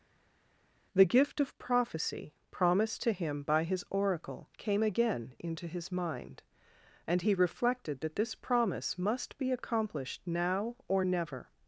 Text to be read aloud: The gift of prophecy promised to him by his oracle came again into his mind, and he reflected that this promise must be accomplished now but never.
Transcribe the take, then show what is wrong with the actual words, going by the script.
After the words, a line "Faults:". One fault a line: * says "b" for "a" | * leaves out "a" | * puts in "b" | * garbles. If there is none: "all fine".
The gift of prophecy promised to him by his oracle came again into his mind, and he reflected that this promise must be accomplished now or never.
Faults:
* says "or" for "but"